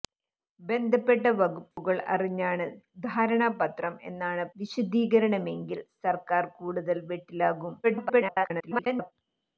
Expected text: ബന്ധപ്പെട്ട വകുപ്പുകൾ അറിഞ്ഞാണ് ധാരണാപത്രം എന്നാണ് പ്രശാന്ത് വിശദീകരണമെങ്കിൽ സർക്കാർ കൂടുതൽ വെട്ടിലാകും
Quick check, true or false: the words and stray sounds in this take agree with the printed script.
false